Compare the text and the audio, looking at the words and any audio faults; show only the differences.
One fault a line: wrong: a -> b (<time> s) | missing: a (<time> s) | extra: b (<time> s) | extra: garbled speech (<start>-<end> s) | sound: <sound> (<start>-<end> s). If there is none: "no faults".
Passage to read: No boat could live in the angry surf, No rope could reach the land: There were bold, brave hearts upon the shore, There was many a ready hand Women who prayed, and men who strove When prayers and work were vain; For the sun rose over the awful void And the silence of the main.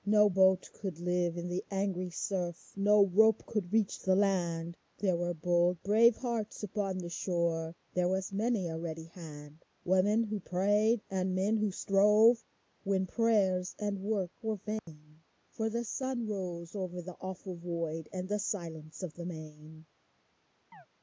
sound: dropout (14.8-14.9 s)
sound: chirp (20.7-20.9 s)